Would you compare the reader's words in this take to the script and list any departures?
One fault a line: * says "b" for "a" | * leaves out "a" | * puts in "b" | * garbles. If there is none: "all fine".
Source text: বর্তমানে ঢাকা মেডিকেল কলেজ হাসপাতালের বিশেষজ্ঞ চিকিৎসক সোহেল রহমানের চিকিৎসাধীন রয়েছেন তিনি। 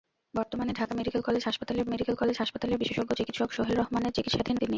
* puts in "মেডিকেল কলেজ হাসপাতালের"
* leaves out "রয়েছেন"